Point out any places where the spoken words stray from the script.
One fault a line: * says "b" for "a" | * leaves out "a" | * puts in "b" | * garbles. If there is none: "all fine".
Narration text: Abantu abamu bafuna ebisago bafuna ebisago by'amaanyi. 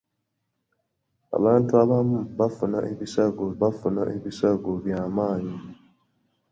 all fine